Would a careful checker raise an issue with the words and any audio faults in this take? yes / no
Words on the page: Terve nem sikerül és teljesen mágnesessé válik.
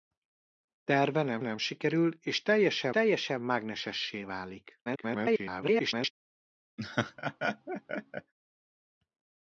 yes